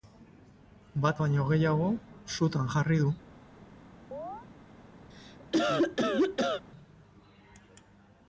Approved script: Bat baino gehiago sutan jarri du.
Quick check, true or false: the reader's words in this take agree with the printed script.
true